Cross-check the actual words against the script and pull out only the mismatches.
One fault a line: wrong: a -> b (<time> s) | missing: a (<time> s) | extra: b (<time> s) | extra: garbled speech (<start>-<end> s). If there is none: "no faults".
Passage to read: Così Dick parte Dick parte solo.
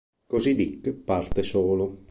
missing: Dick parte (1.4 s)